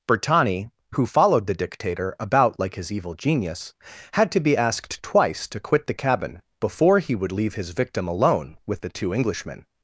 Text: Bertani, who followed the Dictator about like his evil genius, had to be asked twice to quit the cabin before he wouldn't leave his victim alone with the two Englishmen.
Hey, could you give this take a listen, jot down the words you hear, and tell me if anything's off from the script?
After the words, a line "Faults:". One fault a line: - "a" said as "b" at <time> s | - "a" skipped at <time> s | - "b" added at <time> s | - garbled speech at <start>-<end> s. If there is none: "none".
Bertani, who followed the Dictator about like his evil genius, had to be asked twice to quit the cabin before he would leave his victim alone with the two Englishmen.
Faults:
- "wouldn't" said as "would" at 7.2 s